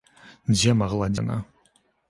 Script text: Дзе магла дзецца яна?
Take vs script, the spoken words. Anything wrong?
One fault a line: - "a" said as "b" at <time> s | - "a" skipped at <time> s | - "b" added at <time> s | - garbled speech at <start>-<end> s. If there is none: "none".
- "дзецца" skipped at 1.1 s